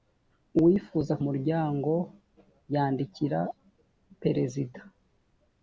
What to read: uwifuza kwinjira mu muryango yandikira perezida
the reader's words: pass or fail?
fail